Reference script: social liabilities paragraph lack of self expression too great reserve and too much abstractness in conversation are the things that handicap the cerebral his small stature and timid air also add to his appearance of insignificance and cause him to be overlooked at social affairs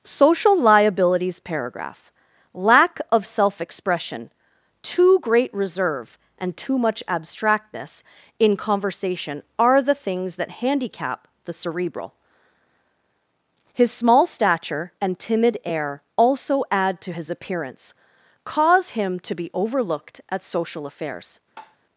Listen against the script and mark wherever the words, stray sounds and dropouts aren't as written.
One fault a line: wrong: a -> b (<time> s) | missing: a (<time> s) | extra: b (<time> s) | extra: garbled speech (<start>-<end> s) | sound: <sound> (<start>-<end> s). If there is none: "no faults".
missing: of insignificance and (17.9 s)
sound: tap (21.6-21.8 s)